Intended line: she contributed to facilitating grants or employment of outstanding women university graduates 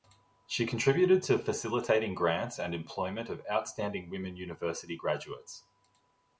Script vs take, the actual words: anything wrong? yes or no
yes